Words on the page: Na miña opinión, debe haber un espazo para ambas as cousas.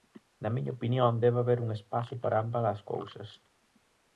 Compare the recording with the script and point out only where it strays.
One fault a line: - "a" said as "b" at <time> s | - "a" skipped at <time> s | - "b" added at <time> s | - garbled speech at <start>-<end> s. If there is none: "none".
none